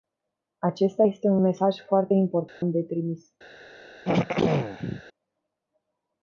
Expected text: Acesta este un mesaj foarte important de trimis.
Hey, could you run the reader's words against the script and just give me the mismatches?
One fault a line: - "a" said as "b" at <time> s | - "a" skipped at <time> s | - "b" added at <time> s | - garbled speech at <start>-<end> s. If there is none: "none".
none